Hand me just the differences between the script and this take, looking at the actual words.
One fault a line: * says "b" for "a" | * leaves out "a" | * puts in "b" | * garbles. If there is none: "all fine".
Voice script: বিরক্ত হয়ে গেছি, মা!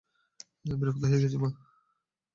all fine